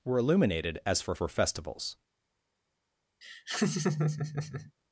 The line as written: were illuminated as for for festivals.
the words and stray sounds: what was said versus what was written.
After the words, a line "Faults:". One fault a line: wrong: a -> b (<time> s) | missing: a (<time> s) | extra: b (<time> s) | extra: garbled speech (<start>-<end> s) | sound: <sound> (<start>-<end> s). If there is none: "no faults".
were illuminated as for for festivals.
Faults:
sound: laugh (3.2-4.7 s)